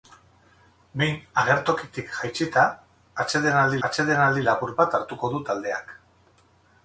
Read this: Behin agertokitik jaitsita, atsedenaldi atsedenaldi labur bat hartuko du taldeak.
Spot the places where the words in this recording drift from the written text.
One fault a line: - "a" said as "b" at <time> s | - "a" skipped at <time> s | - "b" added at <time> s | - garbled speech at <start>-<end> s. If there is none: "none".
none